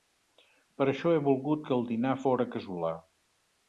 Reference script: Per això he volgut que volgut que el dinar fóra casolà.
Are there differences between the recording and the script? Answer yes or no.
yes